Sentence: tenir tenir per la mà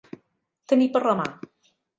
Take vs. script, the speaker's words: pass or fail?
fail